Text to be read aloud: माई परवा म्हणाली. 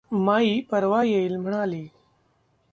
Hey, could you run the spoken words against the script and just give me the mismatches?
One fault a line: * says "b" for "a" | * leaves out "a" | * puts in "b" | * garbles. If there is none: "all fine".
* puts in "येईल"